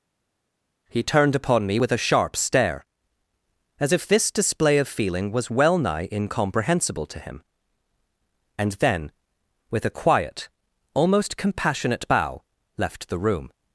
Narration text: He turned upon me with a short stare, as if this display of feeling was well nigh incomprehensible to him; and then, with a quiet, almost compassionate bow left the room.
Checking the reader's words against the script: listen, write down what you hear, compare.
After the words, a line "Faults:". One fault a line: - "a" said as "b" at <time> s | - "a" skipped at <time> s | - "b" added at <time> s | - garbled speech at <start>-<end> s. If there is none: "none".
He turned upon me with a sharp stare, as if this display of feeling was well nigh incomprehensible to him; and then, with a quiet, almost compassionate bow left the room.
Faults:
- "short" said as "sharp" at 2.0 s